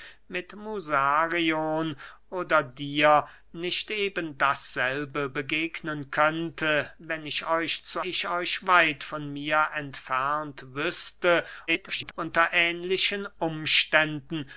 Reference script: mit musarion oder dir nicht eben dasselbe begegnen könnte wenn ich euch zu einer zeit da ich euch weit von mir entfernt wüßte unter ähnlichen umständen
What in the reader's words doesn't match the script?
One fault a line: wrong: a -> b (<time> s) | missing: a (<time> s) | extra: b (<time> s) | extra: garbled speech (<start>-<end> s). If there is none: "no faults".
missing: einer zeit da (8.0 s)
extra: garbled speech (11.7-12.1 s)